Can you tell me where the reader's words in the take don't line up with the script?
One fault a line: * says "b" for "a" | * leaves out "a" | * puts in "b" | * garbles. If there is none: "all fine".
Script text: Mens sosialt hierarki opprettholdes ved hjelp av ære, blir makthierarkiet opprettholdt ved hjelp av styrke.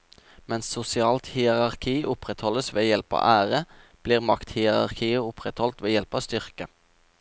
all fine